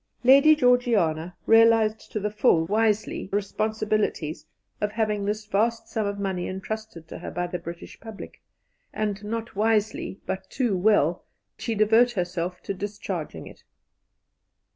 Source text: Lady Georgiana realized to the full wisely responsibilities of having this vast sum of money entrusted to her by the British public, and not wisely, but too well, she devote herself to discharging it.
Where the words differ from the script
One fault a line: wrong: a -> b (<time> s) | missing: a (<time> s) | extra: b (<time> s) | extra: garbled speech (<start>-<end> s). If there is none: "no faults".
no faults